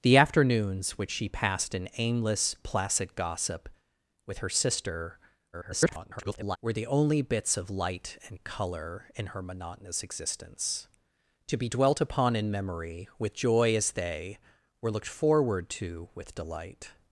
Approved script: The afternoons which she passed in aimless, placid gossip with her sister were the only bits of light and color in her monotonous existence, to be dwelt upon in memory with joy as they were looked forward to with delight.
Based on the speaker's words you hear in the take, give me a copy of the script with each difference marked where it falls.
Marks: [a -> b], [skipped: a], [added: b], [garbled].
The afternoons which she passed in aimless, placid gossip with her sister [garbled] were the only bits of light and color in her monotonous existence, to be dwelt upon in memory with joy as they were looked forward to with delight.